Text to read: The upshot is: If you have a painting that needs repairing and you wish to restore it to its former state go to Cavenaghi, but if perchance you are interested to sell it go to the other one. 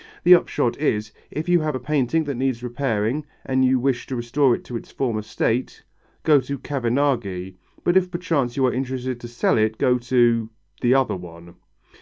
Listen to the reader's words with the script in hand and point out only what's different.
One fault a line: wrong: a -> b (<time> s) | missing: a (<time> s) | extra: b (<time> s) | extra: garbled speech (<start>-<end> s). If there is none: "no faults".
no faults